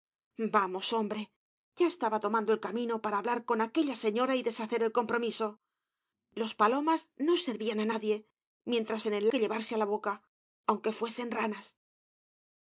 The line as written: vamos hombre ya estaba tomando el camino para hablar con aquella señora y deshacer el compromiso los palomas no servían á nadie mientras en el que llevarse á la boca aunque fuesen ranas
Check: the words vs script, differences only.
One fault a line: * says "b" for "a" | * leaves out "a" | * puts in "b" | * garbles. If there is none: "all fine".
all fine